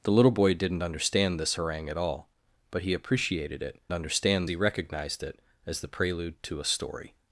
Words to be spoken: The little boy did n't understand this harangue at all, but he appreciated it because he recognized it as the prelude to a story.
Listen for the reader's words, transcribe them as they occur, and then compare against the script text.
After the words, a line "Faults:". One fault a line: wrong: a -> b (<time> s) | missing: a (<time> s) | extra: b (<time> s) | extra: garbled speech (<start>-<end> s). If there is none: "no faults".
The little boy did n't understand this harangue at all, but he appreciated it understand he recognized it as the prelude to a story.
Faults:
wrong: because -> understand (3.9 s)